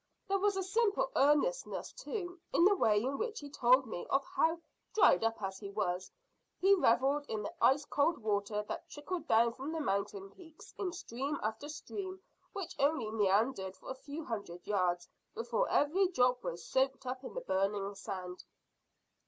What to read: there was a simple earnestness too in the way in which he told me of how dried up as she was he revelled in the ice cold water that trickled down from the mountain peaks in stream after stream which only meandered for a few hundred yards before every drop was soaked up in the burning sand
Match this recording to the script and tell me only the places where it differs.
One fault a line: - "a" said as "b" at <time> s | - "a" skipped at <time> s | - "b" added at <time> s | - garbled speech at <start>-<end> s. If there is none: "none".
- "she" said as "he" at 5.6 s